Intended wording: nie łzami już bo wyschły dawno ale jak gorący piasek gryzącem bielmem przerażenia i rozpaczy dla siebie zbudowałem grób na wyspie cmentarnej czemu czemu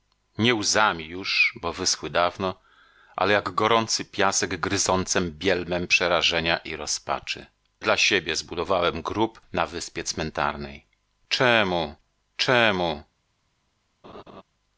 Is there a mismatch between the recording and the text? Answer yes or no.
no